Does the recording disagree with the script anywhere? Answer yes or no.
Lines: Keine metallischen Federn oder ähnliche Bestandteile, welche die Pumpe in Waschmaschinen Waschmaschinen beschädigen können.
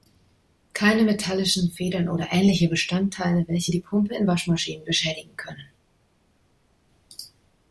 yes